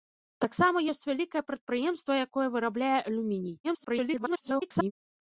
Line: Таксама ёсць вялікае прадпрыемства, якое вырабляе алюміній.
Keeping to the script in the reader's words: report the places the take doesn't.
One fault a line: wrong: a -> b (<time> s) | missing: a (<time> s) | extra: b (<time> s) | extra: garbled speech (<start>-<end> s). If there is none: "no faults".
extra: garbled speech (3.6-4.9 s)